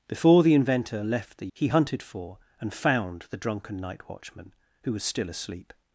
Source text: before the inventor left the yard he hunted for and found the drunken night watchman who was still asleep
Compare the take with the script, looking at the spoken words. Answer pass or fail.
fail